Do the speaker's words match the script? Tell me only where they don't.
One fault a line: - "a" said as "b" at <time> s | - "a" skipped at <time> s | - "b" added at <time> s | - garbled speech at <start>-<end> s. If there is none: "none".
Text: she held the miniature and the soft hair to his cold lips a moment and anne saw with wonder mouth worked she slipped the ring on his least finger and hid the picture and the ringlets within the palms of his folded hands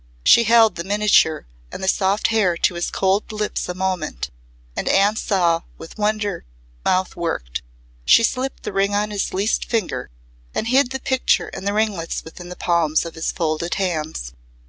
none